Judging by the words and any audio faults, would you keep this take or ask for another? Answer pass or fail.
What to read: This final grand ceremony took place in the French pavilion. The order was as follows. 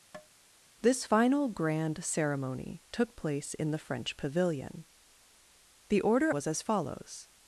fail